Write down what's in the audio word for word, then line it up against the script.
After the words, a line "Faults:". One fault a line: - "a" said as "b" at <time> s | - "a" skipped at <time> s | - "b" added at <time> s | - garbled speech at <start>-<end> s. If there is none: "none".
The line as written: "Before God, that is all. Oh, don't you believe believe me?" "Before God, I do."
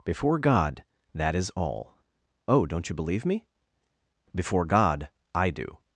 "Before God, that is all. Oh, don't you believe me?" "Before God, I do."
Faults:
- "believe" skipped at 3.2 s